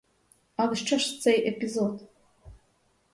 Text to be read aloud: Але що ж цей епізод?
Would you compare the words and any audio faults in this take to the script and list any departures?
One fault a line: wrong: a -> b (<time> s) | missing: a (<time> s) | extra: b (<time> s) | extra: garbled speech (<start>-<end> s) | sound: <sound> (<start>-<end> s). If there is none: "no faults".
no faults